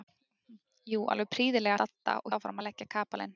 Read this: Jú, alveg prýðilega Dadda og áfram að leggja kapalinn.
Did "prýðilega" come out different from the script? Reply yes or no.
no